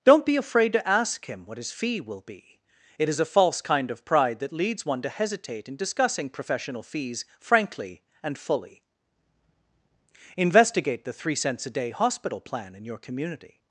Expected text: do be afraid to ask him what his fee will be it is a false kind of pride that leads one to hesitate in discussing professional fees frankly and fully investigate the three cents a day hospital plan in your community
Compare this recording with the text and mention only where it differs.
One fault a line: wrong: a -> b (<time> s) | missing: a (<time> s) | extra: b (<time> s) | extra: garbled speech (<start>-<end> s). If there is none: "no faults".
wrong: do -> don't (0.0 s)